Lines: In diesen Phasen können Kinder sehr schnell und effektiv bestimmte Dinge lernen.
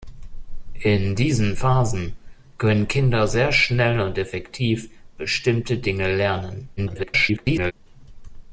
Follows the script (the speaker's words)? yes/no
no